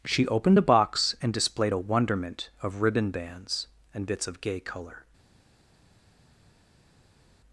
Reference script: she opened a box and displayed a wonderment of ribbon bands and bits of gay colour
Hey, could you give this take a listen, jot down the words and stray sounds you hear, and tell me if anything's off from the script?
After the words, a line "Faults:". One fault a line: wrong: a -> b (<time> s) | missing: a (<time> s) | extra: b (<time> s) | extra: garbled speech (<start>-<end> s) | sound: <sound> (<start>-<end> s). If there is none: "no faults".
she opened a box and displayed a wonderment of ribbon bands and bits of gay colour
Faults:
no faults